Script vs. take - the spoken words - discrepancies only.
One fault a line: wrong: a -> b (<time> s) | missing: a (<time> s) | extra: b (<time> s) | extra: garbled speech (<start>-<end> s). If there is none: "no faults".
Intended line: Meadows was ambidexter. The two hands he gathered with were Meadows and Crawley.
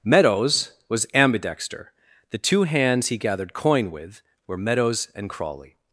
extra: coin (3.5 s)